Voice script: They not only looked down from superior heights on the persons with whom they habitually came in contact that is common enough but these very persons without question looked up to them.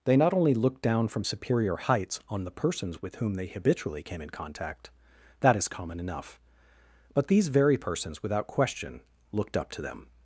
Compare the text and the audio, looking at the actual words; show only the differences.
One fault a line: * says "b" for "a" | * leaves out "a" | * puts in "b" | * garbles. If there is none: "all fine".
all fine